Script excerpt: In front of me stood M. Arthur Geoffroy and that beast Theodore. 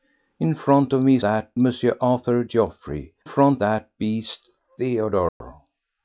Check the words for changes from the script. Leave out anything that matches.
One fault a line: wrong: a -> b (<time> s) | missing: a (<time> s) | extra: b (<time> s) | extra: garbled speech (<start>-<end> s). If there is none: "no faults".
wrong: stood -> that (1.2 s)
wrong: and -> front (3.2 s)